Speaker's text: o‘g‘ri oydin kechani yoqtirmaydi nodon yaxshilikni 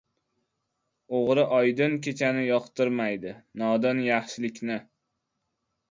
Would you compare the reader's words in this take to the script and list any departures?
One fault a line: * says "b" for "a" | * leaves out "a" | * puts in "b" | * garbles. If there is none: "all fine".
all fine